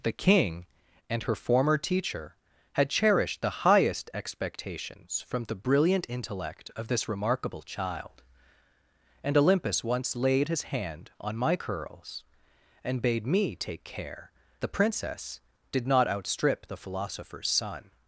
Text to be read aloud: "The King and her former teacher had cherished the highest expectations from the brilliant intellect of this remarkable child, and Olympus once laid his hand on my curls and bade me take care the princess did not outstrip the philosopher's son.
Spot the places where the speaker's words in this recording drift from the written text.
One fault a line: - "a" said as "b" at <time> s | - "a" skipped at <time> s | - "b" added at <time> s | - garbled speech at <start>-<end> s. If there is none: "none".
none